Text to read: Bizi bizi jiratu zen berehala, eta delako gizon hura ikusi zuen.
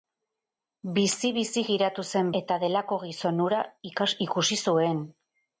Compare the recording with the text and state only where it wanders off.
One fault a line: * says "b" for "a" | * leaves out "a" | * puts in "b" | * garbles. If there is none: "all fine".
* leaves out "berehala"